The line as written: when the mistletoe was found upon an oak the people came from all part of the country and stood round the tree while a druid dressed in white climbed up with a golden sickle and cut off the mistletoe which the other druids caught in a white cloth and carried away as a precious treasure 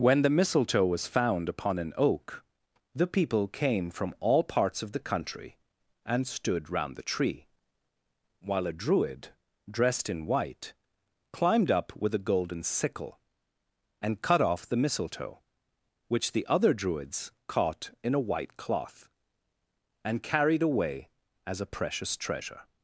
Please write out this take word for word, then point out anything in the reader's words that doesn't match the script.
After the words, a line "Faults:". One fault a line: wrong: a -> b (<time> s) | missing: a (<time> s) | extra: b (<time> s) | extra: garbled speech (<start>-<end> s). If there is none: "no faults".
when the mistletoe was found upon an oak the people came from all parts of the country and stood round the tree while a druid dressed in white climbed up with a golden sickle and cut off the mistletoe which the other druids caught in a white cloth and carried away as a precious treasure
Faults:
wrong: part -> parts (4.4 s)